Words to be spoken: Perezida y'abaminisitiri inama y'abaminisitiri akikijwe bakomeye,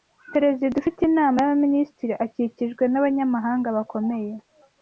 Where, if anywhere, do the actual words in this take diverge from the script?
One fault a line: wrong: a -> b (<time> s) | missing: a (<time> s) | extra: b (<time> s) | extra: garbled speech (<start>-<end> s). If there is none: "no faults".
wrong: y'abaminisitiri -> ufite (0.8 s)
extra: n'Abanyamabanga (2.9 s)